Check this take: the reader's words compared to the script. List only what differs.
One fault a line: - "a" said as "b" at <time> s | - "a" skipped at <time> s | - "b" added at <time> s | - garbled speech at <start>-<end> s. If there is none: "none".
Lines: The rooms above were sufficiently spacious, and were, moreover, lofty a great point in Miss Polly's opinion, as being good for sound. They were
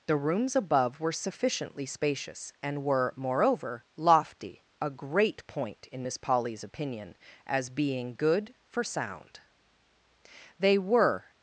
none